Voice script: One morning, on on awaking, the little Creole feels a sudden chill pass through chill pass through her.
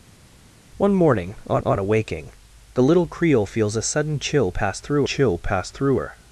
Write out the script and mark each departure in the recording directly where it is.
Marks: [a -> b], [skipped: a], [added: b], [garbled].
One morning, on on awaking, the little Creole feels a sudden chill pass through chill pass through her.